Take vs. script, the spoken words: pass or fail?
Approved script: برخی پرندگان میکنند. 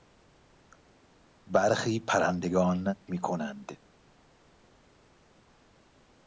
pass